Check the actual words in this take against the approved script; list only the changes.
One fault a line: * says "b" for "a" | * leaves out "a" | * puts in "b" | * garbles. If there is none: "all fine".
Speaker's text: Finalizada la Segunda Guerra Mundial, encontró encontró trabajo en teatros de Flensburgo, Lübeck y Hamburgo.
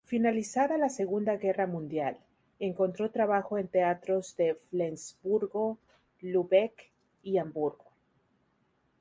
* leaves out "encontró"